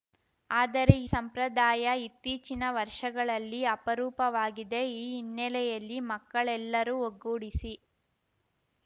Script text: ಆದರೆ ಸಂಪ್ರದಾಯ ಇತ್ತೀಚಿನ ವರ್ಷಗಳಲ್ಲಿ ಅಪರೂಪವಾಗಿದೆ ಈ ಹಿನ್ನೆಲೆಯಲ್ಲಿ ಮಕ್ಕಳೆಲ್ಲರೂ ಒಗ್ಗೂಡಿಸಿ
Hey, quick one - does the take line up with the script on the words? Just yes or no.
yes